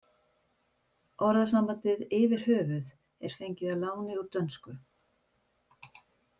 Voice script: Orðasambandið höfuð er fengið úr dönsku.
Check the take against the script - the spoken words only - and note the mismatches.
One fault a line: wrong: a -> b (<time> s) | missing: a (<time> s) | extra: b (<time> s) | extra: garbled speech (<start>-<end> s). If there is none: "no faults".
extra: yfir (2.2 s)
extra: að láni (3.8 s)